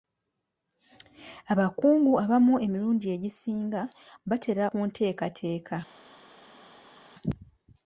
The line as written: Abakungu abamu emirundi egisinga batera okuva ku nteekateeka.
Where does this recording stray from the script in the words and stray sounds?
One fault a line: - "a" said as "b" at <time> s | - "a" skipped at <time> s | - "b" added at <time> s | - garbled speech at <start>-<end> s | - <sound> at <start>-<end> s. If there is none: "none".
- "okuva" skipped at 4.7 s